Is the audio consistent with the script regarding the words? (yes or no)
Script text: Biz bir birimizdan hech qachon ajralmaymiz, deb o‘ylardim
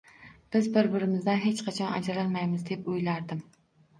yes